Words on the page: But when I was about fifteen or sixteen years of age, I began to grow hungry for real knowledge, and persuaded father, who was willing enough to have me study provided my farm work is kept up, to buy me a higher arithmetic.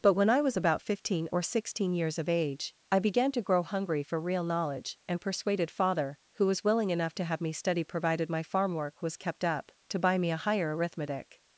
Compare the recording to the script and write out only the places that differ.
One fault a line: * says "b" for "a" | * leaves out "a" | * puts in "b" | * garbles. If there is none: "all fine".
* says "was" for "is"